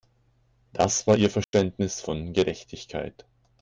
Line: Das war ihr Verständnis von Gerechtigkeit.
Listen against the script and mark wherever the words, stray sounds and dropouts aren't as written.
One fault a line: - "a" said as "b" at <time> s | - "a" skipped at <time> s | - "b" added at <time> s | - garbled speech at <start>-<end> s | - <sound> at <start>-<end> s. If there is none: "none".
- dropout at 1.4-1.5 s